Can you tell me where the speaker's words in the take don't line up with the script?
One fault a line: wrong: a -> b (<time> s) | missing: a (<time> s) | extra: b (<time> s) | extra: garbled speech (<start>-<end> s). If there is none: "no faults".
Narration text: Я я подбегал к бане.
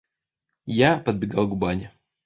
missing: я (1.0 s)